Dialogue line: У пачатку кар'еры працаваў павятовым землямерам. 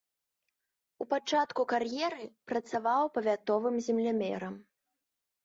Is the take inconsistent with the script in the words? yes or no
no